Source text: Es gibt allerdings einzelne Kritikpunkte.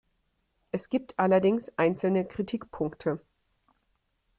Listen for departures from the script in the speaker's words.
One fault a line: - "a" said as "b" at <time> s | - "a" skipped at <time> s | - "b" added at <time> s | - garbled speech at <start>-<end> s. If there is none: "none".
none